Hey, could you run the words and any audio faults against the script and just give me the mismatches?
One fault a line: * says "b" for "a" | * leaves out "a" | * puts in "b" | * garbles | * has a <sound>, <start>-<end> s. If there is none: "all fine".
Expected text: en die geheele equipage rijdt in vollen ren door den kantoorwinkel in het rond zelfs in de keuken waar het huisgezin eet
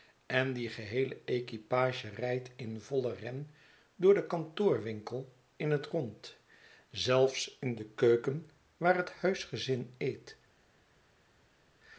all fine